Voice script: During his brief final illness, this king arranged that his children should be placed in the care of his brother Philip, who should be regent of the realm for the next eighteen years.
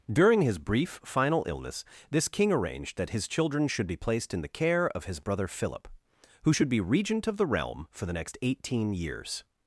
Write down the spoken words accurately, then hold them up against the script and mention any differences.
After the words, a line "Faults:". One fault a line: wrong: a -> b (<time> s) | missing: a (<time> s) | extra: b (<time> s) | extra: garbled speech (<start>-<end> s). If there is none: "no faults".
During his brief final illness, this king arranged that his children should be placed in the care of his brother Philip, who should be regent of the realm for the next eighteen years.
Faults:
no faults